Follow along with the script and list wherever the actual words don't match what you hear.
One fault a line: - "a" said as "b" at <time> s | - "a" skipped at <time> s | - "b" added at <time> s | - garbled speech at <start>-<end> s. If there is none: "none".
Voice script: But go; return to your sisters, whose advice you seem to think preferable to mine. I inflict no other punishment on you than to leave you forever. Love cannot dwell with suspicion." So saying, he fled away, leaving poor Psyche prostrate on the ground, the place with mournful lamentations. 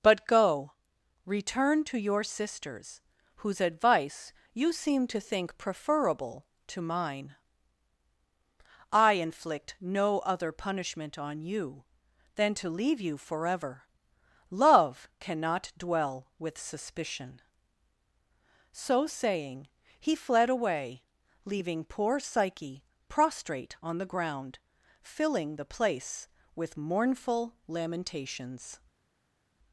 - "filling" added at 25.0 s